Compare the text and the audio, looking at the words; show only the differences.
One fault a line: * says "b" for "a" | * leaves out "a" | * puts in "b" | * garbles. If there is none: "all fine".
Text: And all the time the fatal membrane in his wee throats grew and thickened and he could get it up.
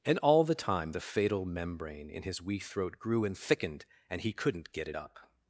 * says "throat" for "throats"
* says "couldn't" for "could"